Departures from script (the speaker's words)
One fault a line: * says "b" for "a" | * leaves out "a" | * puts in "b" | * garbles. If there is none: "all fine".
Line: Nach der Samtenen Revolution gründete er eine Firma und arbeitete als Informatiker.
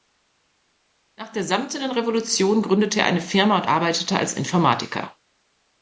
all fine